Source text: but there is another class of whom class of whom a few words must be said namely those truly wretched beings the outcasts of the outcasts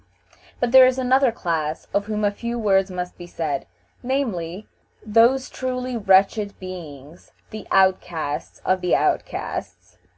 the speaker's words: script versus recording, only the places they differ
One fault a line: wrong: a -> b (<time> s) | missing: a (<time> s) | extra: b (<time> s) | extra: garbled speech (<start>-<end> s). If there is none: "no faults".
missing: class of whom (2.2 s)